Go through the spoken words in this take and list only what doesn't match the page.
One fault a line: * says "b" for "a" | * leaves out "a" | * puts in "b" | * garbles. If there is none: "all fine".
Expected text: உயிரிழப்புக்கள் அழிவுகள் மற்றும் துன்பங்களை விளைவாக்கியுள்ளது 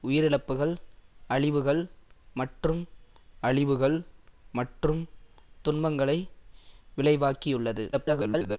* puts in "அழிவுகள் மற்றும்"
* garbles